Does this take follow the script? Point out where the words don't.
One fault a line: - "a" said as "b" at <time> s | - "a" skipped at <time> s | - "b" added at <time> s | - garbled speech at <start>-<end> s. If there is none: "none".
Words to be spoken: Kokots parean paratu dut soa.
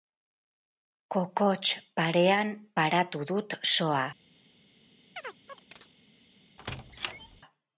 none